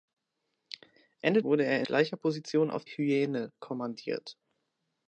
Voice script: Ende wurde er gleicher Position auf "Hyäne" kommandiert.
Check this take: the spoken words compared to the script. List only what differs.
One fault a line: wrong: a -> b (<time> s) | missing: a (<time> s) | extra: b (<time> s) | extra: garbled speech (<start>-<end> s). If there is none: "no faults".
no faults